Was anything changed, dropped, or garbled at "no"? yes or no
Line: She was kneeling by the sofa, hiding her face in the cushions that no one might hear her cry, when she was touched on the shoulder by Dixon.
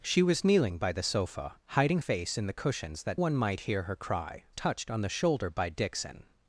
yes